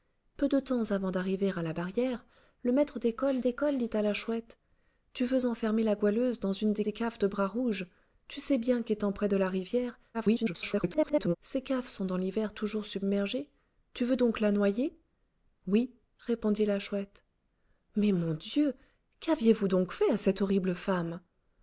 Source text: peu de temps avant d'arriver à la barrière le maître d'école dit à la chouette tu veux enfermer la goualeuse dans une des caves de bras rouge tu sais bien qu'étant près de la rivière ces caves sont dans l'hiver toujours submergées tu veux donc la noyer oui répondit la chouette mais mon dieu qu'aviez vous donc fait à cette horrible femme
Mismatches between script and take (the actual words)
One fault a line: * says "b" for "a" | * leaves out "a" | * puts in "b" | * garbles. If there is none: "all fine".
* puts in "d'école"
* puts in "des"
* garbles